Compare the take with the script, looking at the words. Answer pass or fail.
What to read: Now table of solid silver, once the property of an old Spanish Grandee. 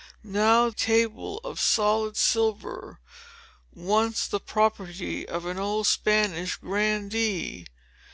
pass